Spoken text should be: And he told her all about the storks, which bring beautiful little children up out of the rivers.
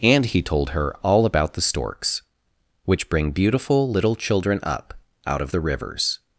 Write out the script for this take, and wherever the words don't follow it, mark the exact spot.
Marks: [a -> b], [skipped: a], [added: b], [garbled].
And he told her all about the storks, which bring beautiful little children up out of the rivers.